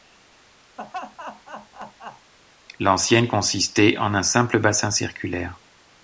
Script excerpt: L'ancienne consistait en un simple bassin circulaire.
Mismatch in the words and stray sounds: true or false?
true